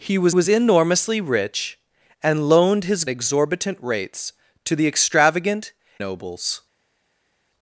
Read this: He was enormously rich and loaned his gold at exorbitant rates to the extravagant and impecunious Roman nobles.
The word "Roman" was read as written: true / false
false